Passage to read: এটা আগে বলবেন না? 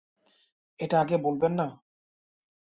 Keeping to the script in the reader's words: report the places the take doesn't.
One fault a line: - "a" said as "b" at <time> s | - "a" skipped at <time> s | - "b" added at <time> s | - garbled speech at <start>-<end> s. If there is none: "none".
none